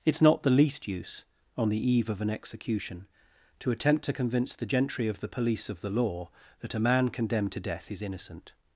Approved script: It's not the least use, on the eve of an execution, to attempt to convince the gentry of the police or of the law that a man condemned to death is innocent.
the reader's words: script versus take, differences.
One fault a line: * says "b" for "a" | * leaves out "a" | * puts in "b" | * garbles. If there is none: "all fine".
* leaves out "or"